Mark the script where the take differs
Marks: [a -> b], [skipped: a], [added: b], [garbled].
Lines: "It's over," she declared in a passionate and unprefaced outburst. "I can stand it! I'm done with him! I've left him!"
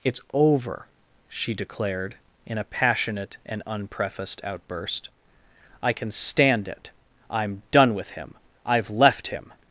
"It's over," she declared in a passionate and unprefaced outburst. "I can stand it! I'm done with him! I've left him!"